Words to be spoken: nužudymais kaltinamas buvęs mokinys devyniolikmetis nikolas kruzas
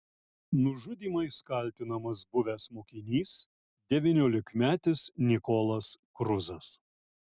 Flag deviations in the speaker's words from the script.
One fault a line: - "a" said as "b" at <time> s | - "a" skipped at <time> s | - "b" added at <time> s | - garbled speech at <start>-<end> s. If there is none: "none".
none